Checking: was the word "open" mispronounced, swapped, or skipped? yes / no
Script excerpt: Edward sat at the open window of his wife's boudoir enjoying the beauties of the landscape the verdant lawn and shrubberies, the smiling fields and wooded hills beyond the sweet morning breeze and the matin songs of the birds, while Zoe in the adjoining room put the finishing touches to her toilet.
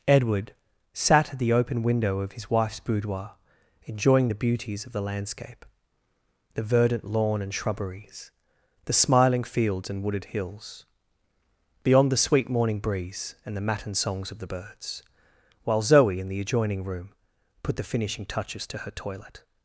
no